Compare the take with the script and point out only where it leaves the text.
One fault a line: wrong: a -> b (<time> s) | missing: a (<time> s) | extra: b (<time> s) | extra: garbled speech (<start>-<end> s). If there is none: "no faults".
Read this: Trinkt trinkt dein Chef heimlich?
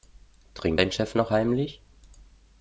missing: trinkt (0.8 s)
extra: noch (1.1 s)